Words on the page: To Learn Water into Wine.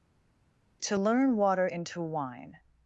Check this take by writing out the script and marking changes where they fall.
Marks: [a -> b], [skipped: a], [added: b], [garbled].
To Learn Water into Wine.